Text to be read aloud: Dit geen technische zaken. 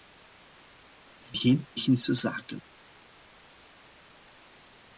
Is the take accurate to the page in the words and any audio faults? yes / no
yes